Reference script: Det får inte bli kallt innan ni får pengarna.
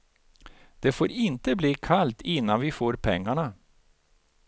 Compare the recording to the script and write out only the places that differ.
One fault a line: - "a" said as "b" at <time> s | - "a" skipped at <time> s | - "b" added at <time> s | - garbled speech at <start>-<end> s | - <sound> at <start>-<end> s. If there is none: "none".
- "ni" said as "vi" at 2.6 s